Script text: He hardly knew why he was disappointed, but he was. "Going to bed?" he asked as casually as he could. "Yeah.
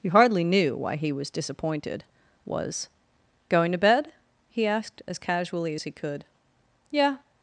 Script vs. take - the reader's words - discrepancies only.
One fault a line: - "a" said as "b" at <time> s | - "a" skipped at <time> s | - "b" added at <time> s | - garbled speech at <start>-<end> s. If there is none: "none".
- "but he" skipped at 2.0 s